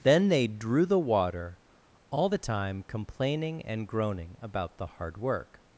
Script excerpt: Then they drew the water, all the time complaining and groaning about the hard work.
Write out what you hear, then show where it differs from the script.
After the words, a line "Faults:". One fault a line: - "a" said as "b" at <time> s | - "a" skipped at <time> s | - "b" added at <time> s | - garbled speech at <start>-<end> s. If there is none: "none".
Then they drew the water, all the time complaining and groaning about the hard work.
Faults:
none